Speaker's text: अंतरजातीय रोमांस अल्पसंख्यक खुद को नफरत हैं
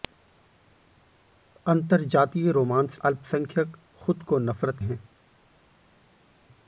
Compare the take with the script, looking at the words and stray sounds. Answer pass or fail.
pass